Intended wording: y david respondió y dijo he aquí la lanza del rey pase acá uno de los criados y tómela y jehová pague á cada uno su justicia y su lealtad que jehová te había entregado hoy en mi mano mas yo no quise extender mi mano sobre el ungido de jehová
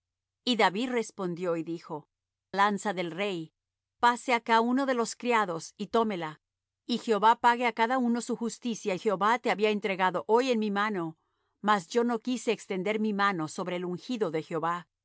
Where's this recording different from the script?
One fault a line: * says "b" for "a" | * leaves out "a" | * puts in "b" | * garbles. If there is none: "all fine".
* leaves out "he aquí la"
* leaves out "su lealtad que"